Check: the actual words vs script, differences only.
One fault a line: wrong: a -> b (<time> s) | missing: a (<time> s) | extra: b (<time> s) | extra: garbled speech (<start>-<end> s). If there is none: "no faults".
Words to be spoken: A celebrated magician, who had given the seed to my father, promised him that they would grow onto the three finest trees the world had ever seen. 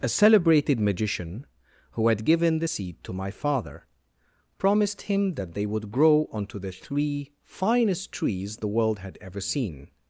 no faults